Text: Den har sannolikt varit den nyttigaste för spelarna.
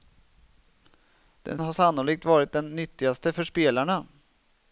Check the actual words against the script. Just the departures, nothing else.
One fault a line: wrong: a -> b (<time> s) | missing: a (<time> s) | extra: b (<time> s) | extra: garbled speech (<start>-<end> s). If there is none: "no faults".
no faults